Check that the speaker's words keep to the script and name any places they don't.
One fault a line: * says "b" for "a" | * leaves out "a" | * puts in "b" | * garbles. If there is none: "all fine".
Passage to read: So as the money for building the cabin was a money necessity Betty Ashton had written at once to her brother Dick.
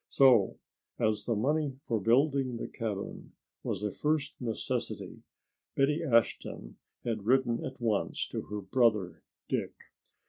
* says "first" for "money"